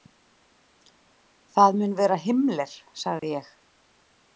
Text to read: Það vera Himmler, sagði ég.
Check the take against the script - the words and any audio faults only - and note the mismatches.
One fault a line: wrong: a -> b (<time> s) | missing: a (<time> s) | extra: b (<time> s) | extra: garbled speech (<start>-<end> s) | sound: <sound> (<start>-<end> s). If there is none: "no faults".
extra: mun (1.8 s)
sound: dropout (3.2-3.2 s)